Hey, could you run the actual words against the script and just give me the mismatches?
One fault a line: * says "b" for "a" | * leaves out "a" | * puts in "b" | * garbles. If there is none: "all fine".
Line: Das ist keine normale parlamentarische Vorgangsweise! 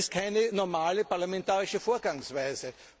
all fine